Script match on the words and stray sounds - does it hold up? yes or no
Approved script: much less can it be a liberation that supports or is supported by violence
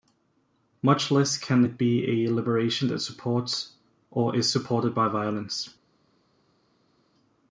yes